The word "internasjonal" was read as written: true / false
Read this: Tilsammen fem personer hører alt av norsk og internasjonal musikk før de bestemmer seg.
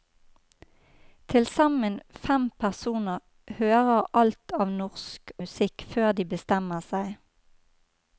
false